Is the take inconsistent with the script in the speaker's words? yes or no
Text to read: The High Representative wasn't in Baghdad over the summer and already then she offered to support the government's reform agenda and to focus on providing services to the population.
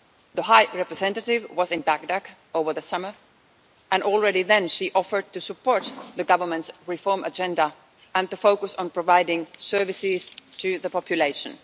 yes